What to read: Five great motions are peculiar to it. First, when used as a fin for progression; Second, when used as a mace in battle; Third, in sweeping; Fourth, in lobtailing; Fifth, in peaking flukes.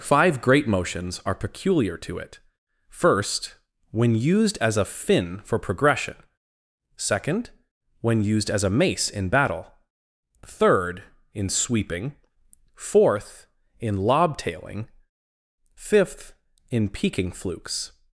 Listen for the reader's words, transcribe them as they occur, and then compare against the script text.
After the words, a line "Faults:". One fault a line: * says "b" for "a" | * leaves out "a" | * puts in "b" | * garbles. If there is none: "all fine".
Five great motions are peculiar to it. First, when used as a fin for progression; Second, when used as a mace in battle; Third, in sweeping; Fourth, in lobtailing; Fifth, in peaking flukes.
Faults:
all fine